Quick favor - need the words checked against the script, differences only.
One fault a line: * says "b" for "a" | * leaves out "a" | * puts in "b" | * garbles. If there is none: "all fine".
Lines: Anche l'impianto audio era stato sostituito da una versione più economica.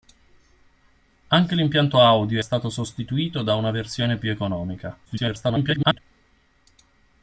* leaves out "era"
* garbles